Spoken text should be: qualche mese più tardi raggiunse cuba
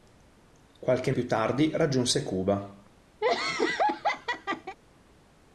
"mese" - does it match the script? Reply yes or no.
no